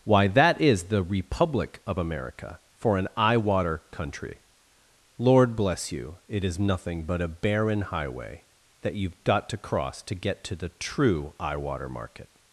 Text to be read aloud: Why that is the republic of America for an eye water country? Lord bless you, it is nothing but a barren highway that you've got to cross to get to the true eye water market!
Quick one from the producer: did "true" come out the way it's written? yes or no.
yes